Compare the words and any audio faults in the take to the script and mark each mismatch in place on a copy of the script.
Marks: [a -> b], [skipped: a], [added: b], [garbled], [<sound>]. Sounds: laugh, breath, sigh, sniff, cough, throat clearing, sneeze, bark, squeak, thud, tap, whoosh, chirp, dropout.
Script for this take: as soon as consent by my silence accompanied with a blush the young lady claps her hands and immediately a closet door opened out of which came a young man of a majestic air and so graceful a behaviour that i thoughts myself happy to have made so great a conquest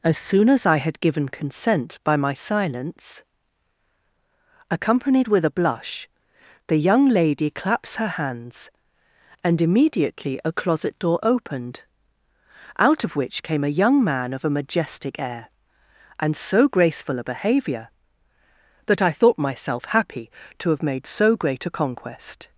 as soon as [added: i had given] consent by my silence accompanied with a blush the young lady claps her hands and immediately a closet door opened out of which came a young man of a majestic air and so graceful a behaviour that i [thoughts -> thought] myself happy to have made so great a conquest